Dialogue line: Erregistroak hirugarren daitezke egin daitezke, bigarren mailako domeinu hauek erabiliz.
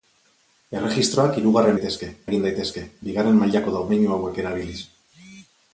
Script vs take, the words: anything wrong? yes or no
no